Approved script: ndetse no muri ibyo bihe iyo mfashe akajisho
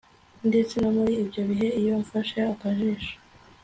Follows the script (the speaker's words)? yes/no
yes